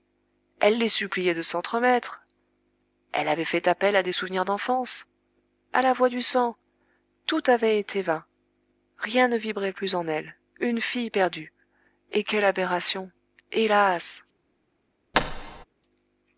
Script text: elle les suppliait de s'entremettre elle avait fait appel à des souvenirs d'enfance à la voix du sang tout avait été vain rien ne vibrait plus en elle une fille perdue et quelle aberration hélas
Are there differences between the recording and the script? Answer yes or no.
no